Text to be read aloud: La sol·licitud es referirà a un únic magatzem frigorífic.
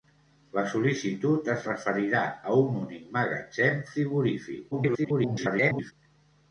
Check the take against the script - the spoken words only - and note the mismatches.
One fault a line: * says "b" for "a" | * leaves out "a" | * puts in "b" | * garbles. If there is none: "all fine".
* garbles